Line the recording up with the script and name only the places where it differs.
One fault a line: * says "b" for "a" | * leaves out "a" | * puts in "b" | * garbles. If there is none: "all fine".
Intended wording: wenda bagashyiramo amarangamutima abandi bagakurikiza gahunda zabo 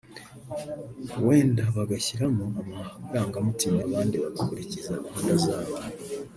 all fine